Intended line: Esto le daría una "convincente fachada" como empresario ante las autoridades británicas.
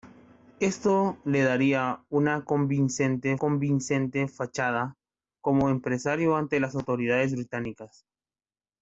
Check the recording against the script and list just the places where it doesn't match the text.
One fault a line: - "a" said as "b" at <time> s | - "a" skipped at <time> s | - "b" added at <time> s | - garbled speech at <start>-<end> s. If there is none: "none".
- "convincente" added at 3.4 s